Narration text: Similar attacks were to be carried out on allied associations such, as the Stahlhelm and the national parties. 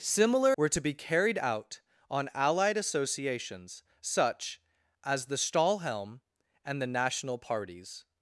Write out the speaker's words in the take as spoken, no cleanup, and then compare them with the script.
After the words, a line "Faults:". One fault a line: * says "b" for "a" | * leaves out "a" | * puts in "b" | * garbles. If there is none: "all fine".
Similar were to be carried out on allied associations such, as the Stahlhelm and the national parties.
Faults:
* leaves out "attacks"